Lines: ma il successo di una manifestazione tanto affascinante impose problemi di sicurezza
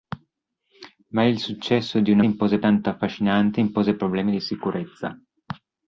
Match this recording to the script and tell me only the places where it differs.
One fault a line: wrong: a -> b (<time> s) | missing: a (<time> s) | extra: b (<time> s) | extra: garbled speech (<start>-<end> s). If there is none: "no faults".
wrong: manifestazione -> impose (2.2 s)